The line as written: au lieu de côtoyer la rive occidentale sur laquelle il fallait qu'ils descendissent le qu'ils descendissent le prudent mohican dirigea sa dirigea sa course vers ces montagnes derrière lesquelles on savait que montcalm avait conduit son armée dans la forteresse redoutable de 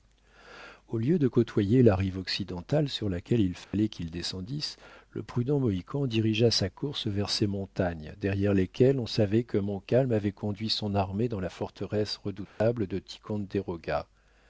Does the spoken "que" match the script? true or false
true